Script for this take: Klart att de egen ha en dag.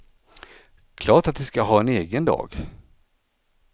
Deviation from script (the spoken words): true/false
true